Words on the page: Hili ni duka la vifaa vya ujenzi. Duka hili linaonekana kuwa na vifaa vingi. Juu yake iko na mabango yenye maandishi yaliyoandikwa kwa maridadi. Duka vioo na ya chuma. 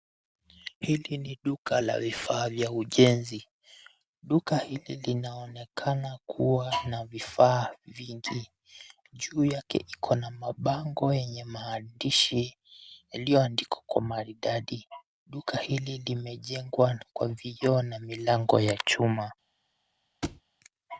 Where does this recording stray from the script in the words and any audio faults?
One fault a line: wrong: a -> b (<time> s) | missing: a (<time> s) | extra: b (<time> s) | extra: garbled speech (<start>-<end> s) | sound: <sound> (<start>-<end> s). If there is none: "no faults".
extra: hili limejengwa kwa (15.6 s)
extra: milango (18.0 s)
sound: thud (20.2-20.4 s)